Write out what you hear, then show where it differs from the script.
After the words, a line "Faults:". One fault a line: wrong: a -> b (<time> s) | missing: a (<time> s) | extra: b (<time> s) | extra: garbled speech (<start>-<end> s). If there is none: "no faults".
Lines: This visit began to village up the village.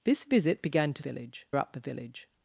This visit began to village up the village.
Faults:
no faults